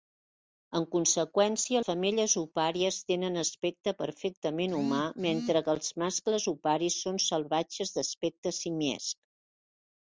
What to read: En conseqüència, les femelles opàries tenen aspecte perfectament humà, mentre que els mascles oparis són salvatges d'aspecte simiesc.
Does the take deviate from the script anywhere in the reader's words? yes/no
yes